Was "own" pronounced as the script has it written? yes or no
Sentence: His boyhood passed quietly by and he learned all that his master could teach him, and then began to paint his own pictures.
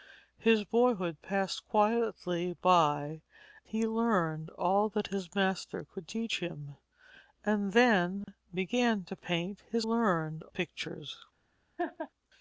no